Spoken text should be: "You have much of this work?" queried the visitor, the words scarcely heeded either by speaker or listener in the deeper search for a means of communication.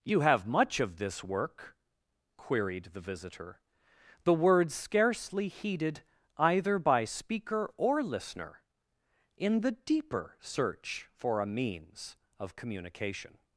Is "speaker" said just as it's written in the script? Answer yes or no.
yes